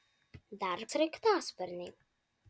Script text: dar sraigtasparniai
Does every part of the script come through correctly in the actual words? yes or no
yes